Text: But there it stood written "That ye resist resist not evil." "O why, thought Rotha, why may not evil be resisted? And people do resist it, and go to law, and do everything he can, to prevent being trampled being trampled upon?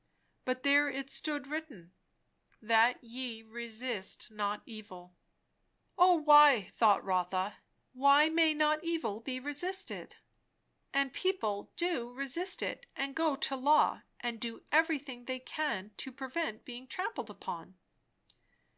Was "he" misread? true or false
true